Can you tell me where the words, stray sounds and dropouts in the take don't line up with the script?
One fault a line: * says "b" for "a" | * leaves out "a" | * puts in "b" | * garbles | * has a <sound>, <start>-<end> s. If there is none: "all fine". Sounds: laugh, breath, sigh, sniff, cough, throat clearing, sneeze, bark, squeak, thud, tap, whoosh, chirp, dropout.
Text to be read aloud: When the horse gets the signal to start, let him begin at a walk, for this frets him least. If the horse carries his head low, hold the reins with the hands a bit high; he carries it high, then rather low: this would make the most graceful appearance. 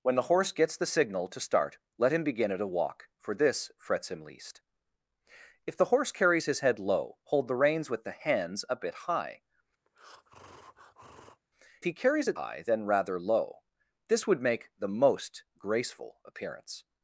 * has a breath, 9.9-11.4 s